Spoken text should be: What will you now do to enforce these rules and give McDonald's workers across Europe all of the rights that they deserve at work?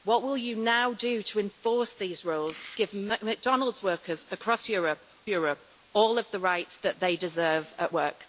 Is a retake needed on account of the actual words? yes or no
yes